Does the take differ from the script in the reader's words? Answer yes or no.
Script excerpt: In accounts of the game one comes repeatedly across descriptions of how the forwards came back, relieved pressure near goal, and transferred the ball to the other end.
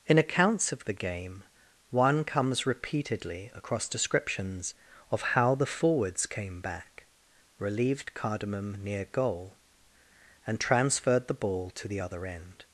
yes